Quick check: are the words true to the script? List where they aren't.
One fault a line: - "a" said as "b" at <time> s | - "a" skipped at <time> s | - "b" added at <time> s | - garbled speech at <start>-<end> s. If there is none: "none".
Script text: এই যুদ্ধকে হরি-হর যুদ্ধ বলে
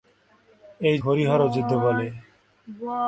- "যুদ্ধকে" skipped at 1.0 s